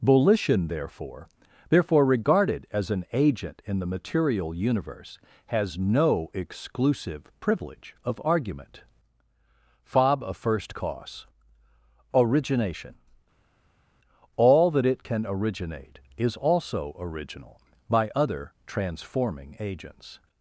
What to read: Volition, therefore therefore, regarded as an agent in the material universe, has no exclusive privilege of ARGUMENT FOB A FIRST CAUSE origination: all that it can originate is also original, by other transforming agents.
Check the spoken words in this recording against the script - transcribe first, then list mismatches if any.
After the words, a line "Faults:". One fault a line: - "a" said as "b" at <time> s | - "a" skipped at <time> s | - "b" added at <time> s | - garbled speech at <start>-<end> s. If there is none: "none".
Volition, therefore therefore, regarded as an agent in the material universe, has no exclusive privilege of ARGUMENT FOB A FIRST CAUSE origination: all that it can originate is also original, by other transforming agents.
Faults:
none